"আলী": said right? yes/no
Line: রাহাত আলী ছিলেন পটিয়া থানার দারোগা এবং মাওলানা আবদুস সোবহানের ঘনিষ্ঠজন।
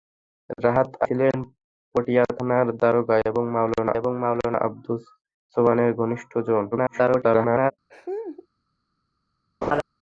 no